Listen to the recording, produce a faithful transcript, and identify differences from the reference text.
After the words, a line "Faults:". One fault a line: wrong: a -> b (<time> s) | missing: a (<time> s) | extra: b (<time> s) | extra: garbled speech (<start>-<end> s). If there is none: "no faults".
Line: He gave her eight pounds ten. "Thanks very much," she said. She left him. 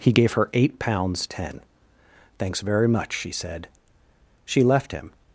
He gave her eight pounds ten. "Thanks very much," she said. She left him.
Faults:
no faults